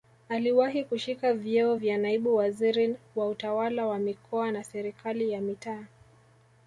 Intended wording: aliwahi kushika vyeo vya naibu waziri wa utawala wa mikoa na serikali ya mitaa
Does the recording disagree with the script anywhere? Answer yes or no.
no